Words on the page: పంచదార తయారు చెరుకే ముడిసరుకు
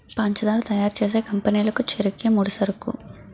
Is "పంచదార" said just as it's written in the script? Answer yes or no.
yes